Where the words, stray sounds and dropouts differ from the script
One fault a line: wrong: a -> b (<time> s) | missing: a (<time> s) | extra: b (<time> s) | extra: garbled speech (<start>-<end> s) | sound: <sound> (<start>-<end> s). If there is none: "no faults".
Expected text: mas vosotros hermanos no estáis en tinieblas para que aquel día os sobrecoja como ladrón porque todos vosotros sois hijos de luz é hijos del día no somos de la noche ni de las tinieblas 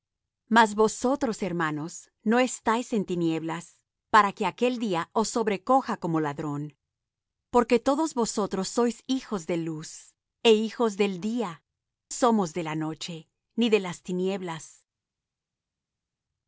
missing: no (11.6 s)